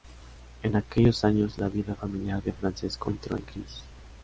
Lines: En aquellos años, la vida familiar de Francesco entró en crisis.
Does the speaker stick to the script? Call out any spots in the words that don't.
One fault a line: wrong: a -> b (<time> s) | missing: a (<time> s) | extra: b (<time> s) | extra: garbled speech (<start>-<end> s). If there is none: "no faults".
no faults